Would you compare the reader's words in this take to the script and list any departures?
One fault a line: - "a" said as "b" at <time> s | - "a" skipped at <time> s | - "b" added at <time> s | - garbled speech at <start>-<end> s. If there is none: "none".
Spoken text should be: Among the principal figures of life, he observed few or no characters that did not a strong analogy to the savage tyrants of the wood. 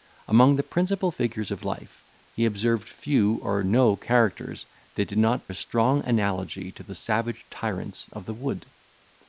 none